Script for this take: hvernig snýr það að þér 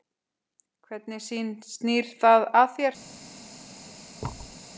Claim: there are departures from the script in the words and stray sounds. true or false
true